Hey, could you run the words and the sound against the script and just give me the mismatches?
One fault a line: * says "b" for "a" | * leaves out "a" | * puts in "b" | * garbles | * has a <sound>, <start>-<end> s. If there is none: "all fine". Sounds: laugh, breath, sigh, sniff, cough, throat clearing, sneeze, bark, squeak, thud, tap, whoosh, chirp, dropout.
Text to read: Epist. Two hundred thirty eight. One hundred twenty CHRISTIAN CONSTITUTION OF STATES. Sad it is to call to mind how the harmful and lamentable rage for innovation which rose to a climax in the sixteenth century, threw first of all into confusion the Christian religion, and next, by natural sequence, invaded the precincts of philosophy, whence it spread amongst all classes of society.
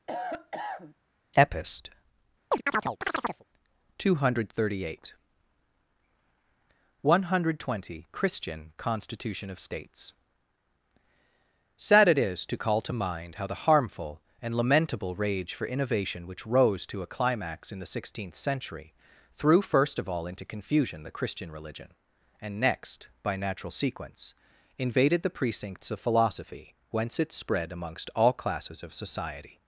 * has a cough, 0.1-0.9 s
* has a chirp, 2.5-3.4 s